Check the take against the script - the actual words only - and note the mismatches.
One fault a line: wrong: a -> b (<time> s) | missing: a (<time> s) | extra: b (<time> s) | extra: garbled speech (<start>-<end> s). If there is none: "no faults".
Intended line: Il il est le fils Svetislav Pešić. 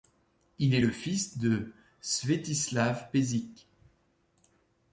missing: il (0.7 s)
extra: de (1.4 s)